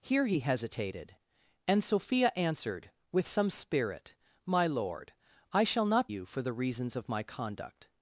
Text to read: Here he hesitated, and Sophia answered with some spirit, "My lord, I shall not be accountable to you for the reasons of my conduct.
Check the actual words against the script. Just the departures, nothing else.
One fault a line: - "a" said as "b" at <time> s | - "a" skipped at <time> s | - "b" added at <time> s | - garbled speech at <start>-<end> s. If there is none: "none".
- "be accountable to" skipped at 6.1 s